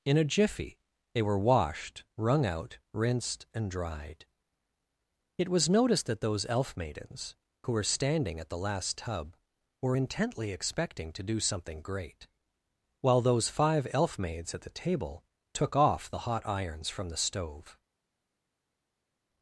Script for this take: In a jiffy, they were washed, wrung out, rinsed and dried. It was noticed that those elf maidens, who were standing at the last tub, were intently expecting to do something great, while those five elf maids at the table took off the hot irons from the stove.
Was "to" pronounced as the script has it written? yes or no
yes